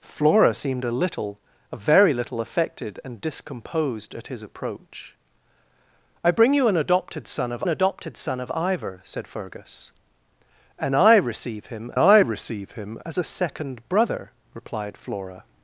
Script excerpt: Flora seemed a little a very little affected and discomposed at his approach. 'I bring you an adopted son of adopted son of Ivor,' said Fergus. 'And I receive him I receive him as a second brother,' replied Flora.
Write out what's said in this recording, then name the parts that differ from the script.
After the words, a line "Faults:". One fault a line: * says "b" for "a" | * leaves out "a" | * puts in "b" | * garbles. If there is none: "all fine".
Flora seemed a little a very little affected and discomposed at his approach. 'I bring you an adopted son of adopted son of Ivor,' said Fergus. 'And I receive him I receive him as a second brother,' replied Flora.
Faults:
all fine